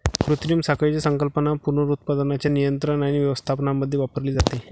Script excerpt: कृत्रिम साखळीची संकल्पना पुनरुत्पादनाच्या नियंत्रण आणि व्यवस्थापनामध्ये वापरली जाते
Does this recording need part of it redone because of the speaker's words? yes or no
no